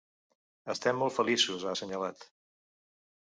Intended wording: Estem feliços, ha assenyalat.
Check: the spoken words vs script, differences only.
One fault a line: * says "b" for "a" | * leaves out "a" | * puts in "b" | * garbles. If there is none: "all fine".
* puts in "molt"